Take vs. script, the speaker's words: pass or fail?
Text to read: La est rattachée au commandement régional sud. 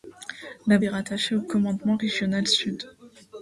pass